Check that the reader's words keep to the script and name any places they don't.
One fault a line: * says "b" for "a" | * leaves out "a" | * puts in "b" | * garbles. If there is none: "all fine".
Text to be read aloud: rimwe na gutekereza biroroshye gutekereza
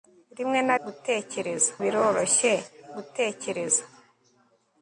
all fine